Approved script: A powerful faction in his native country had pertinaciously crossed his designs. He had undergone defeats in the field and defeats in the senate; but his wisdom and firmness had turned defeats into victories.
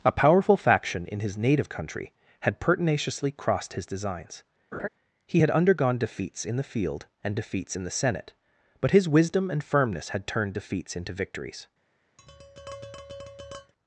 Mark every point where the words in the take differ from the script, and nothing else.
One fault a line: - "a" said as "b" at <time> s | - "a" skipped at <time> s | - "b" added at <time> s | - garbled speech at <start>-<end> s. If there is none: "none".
none